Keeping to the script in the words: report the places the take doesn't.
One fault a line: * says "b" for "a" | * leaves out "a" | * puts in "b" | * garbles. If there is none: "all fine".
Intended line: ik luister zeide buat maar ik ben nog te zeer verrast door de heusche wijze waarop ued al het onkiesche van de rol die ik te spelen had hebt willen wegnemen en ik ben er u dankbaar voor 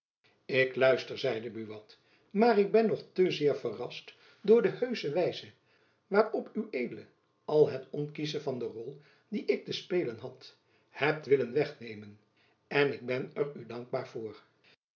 all fine